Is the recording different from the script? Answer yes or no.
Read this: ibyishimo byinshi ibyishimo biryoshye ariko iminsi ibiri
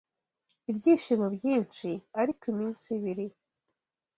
yes